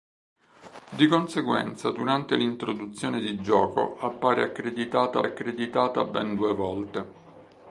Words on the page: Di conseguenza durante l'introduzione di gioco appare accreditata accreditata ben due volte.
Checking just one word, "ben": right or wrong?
right